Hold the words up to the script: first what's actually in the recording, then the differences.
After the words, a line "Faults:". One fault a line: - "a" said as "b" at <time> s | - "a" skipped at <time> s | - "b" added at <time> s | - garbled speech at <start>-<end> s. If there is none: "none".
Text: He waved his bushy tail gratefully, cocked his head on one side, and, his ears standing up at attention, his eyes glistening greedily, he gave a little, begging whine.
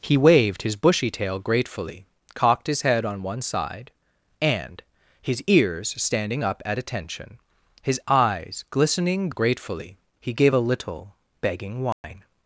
He waved his bushy tail gratefully, cocked his head on one side, and, his ears standing up at attention, his eyes glistening gratefully, he gave a little, begging whine.
Faults:
- "greedily" said as "gratefully" at 9.3 s